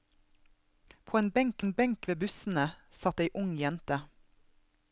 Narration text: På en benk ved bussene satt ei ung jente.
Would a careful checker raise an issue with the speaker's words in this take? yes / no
yes